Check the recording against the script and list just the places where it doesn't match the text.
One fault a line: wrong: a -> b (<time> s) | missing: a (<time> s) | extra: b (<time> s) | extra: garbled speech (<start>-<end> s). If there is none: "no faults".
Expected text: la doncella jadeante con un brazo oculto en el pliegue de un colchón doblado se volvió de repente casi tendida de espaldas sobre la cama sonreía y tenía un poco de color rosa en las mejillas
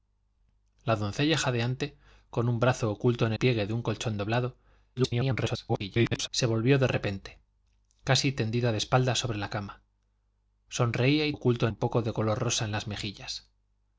missing: el (3.3 s)
extra: garbled speech (5.0-6.3 s)
wrong: tenía -> oculto (11.3 s)